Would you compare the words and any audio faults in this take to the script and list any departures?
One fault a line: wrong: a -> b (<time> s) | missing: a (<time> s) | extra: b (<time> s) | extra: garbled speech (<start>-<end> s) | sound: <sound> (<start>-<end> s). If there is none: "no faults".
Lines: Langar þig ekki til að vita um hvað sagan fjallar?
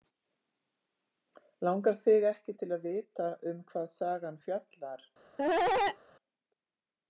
sound: cough (5.4-6.0 s)